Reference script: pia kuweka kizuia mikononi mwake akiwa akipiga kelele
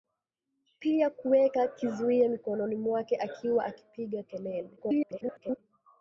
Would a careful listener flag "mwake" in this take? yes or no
no